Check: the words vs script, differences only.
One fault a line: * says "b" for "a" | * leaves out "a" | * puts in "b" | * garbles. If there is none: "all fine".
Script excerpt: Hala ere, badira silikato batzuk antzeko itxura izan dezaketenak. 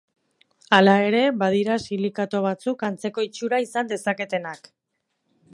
all fine